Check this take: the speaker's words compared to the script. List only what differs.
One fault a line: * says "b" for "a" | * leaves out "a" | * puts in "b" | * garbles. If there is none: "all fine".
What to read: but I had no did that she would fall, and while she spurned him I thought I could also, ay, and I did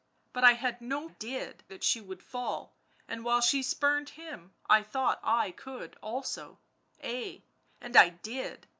all fine